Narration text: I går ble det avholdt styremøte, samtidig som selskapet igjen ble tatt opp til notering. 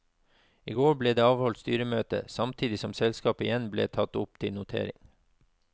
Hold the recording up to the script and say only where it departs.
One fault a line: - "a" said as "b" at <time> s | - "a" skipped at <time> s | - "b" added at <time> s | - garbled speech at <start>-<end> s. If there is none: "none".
none